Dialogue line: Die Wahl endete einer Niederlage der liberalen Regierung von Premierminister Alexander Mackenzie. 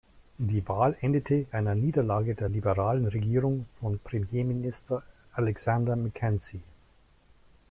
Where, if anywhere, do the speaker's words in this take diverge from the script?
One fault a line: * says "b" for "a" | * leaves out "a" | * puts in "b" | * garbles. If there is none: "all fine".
all fine